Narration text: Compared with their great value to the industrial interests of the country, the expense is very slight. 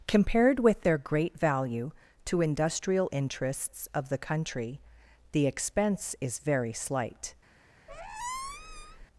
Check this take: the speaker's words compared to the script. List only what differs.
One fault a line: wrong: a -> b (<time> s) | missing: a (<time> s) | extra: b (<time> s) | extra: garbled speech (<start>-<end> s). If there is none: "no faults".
missing: the (2.4 s)